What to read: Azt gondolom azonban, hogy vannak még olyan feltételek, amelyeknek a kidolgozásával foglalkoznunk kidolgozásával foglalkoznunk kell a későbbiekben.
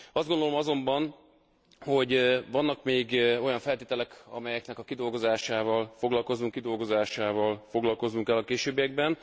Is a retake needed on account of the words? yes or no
no